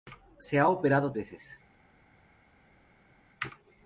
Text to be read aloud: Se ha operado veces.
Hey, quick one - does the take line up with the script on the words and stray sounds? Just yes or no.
yes